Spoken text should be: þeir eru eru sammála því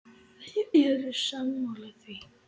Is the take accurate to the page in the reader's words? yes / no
no